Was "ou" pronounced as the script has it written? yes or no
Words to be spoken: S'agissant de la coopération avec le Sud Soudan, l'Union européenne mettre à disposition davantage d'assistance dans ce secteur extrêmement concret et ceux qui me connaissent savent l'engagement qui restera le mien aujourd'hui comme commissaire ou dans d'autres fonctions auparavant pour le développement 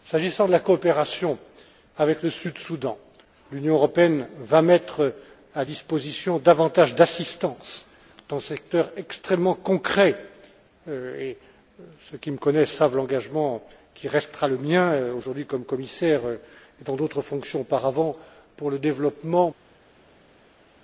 no